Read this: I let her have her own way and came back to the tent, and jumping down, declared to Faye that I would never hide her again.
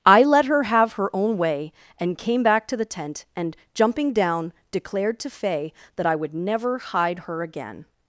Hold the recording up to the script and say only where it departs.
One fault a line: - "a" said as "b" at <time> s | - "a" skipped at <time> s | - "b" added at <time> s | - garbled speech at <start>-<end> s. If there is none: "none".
none